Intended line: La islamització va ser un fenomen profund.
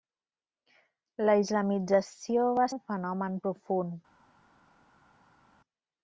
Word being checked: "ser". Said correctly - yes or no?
no